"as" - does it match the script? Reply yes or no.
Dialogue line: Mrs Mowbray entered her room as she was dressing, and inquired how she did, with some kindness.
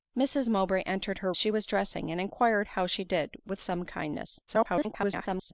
no